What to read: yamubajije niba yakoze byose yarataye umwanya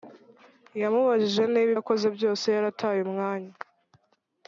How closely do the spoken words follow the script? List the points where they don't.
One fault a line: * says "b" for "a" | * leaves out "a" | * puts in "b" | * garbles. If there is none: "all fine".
all fine